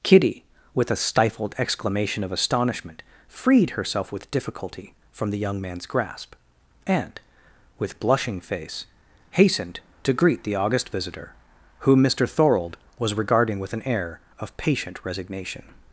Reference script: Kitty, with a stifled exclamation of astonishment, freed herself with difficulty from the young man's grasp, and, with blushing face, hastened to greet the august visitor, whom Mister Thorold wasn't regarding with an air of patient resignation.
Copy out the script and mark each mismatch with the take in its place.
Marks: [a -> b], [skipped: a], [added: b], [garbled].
Kitty, with a stifled exclamation of astonishment, freed herself with difficulty from the young man's grasp, and, with blushing face, hastened to greet the august visitor, whom Mister Thorold [wasn't -> was] regarding with an air of patient resignation.